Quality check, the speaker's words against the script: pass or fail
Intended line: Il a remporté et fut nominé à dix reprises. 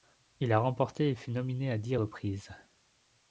pass